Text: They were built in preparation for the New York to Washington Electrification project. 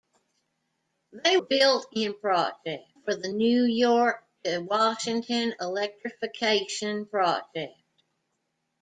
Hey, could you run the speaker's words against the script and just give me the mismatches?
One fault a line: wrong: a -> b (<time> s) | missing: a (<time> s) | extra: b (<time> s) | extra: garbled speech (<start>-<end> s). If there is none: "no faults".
missing: were (1.4 s)
wrong: preparation -> project (2.2 s)